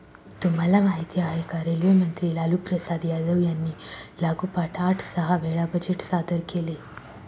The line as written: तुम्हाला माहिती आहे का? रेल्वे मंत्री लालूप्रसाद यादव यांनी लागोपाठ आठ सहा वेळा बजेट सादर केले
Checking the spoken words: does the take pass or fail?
pass